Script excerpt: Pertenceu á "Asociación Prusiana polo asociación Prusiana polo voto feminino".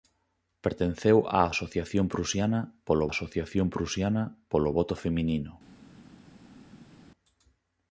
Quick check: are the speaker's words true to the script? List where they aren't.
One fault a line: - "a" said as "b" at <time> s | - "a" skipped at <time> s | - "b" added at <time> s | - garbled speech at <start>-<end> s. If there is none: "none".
none